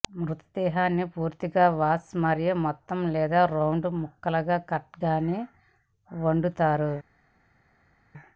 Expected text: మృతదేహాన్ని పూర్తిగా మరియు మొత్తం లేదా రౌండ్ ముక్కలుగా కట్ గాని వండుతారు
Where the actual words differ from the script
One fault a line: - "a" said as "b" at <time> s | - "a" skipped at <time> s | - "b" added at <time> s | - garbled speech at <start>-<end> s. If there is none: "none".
- "వాష్" added at 1.8 s